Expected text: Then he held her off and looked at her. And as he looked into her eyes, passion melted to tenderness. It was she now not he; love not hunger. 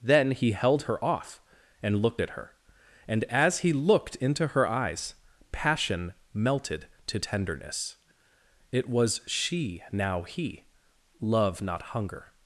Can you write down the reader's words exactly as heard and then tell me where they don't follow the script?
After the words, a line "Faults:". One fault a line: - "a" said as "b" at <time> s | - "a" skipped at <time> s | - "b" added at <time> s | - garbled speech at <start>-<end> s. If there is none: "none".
Then he held her off and looked at her. And as he looked into her eyes, passion melted to tenderness. It was she now he; love not hunger.
Faults:
- "not" skipped at 10.2 s